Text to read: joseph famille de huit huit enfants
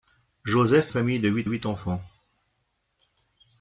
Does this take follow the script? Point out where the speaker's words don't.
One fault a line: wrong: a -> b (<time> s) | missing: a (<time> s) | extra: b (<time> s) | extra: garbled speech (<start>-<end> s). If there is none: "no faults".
no faults